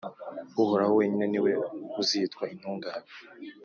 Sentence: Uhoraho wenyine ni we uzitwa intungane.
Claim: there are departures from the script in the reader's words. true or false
false